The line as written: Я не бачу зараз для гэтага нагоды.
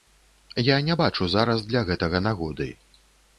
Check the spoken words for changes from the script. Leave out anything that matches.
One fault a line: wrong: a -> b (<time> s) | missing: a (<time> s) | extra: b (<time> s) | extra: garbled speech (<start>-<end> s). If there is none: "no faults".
no faults